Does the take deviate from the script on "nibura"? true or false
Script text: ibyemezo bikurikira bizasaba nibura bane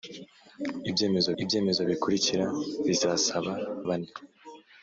true